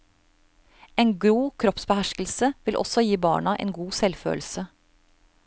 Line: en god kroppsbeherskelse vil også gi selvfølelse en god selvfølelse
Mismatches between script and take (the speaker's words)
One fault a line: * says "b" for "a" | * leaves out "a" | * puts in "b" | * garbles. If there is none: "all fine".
* says "barna" for "selvfølelse"